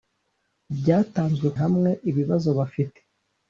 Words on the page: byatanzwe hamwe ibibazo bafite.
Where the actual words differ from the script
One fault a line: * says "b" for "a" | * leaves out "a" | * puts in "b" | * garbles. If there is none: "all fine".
all fine